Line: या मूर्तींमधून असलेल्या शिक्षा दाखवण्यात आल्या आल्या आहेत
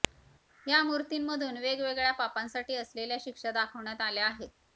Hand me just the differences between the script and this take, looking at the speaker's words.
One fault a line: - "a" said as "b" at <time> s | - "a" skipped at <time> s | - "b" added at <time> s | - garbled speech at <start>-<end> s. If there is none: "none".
- "वेगवेगळ्या पापांसाठी" added at 1.6 s
- "आल्या" skipped at 4.2 s